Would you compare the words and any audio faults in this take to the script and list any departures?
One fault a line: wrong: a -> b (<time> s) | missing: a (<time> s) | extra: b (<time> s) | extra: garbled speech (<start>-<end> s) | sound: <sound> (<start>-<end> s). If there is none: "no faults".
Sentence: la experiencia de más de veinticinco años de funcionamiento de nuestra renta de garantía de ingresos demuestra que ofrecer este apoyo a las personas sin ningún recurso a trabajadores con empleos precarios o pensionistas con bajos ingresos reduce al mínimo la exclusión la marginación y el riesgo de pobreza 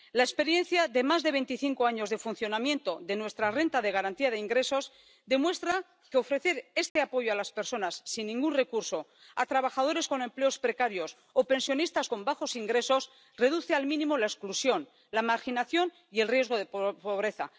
sound: dropout (6.9-7.0 s)